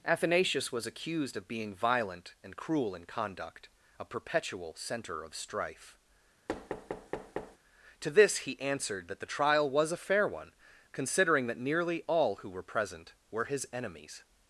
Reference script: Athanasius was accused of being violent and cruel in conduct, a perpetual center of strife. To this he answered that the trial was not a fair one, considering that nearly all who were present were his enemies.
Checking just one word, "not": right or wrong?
wrong